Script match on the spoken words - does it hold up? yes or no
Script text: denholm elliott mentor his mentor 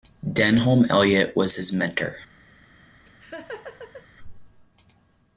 no